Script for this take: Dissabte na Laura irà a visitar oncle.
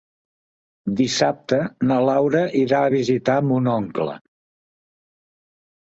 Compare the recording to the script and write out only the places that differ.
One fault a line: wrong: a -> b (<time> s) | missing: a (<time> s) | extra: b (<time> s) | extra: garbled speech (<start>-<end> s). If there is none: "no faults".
extra: mon (3.5 s)